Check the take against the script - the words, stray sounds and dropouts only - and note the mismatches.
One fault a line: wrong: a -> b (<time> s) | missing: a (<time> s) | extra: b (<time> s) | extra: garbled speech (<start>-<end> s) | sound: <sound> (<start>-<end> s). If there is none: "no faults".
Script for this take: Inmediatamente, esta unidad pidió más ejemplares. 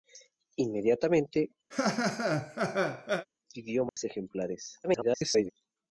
missing: esta unidad (1.5 s)
sound: laugh (1.7-3.3 s)
sound: dropout (3.9-4.0 s)
extra: garbled speech (4.8-5.5 s)